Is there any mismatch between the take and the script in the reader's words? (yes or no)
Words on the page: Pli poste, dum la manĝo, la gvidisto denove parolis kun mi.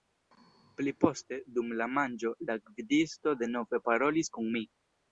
no